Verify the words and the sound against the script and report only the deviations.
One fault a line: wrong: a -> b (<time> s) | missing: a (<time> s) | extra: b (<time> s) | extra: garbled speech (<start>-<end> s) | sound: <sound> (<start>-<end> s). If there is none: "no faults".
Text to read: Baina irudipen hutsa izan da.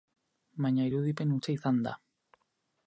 no faults